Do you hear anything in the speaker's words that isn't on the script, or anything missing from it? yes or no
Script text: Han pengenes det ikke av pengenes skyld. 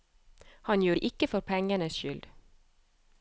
yes